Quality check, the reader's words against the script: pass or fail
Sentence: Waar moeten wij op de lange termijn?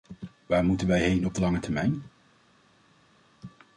fail